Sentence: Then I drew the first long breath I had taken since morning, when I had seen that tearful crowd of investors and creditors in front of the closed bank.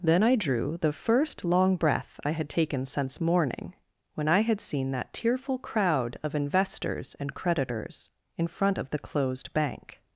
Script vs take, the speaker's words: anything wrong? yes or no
no